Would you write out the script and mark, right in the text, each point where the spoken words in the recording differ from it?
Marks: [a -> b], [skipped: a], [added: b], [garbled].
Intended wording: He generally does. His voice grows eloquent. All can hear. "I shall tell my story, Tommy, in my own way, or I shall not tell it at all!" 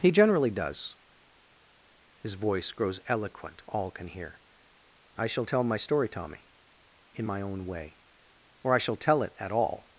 He generally does. His voice grows eloquent. All can hear. "I shall tell my story, Tommy, in my own way, or I shall [skipped: not] tell it at all!"